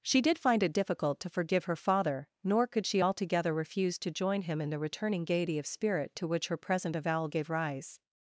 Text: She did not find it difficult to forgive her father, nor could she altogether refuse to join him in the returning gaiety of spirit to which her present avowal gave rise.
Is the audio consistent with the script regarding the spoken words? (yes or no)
no